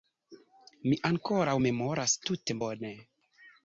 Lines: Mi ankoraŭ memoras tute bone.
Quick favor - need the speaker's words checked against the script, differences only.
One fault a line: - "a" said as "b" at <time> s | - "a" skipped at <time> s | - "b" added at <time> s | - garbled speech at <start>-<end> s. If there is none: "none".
none